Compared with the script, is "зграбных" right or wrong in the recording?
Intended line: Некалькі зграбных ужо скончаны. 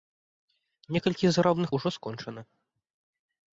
right